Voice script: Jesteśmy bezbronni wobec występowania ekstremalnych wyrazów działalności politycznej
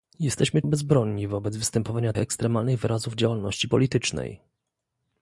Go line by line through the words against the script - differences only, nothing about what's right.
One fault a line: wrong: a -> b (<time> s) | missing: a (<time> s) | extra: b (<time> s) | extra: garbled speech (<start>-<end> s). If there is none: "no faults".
no faults